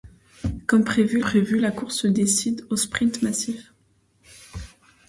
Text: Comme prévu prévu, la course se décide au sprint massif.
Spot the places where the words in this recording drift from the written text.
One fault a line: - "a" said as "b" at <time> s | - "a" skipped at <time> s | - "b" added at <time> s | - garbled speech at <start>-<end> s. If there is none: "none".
none